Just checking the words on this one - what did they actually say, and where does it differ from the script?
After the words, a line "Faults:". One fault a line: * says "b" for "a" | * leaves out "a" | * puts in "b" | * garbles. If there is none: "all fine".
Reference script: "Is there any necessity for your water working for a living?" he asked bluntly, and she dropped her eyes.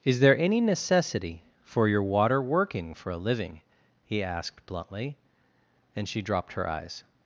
"Is there any necessity for your water working for a living?" he asked bluntly, and she dropped her eyes.
Faults:
all fine